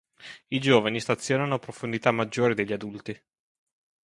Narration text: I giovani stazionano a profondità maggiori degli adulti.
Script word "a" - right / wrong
right